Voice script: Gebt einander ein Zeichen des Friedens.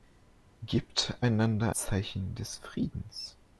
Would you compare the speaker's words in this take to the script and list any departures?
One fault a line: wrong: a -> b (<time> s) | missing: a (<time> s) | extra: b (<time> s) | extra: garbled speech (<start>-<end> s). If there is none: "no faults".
missing: ein (1.7 s)